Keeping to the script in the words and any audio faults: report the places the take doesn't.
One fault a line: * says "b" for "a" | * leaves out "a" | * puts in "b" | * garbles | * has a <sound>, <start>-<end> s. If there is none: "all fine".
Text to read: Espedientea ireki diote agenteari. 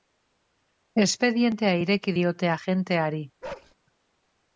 * has a bark, 3.4-3.7 s